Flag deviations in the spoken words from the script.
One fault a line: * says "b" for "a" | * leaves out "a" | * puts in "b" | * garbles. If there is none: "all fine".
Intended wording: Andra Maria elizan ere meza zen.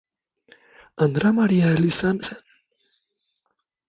* leaves out "ere meza"